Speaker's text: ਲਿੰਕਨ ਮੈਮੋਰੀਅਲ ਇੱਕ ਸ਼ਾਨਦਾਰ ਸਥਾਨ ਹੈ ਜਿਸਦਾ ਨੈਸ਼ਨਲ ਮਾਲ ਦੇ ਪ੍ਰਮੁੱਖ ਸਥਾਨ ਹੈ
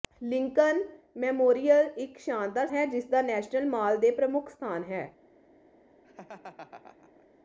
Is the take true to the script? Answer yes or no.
no